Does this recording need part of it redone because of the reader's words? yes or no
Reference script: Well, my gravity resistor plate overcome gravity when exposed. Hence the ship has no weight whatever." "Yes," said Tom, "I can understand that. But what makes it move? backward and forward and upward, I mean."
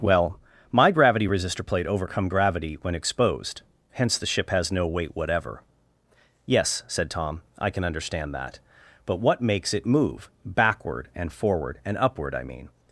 no